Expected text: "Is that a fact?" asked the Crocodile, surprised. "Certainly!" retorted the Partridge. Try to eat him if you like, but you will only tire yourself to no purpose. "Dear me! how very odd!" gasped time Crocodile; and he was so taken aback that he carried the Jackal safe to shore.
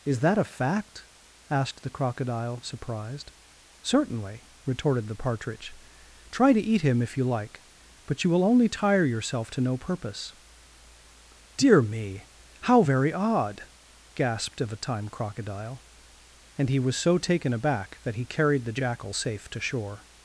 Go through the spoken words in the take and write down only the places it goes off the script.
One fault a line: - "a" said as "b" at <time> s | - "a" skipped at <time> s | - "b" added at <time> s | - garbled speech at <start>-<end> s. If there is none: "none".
- "of a" added at 14.6 s